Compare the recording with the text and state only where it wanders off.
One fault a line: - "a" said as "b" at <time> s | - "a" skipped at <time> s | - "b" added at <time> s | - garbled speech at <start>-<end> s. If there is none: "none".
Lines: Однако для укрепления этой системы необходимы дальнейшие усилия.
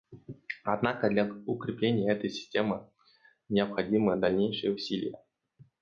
none